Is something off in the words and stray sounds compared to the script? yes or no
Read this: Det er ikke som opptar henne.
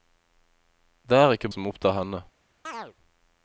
yes